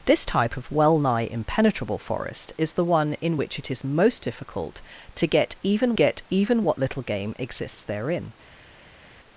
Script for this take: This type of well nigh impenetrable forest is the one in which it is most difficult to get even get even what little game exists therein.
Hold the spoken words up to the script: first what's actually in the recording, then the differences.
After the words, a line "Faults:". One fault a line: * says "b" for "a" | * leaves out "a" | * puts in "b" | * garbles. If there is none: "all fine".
This type of well nigh impenetrable forest is the one in which it is most difficult to get even get even what little game exists therein.
Faults:
all fine